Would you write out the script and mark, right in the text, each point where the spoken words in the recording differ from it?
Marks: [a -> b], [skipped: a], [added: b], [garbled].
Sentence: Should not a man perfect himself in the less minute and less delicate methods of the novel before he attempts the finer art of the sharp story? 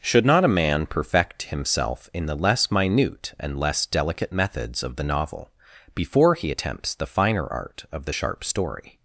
Should not a man perfect himself in the less minute and less delicate methods of the novel before he attempts the finer art of the sharp story?